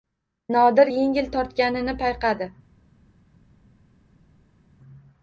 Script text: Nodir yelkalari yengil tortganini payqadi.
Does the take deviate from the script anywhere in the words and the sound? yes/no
yes